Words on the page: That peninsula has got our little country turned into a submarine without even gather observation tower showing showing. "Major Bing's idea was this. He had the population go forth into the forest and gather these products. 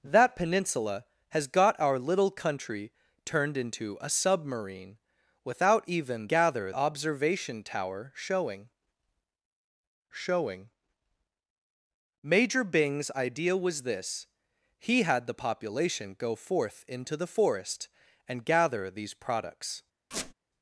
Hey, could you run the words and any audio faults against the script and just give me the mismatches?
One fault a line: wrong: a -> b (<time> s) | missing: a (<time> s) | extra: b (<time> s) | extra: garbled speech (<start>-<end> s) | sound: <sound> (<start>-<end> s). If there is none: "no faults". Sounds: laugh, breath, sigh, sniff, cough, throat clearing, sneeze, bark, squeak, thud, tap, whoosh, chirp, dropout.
sound: squeak (20.1-20.3 s)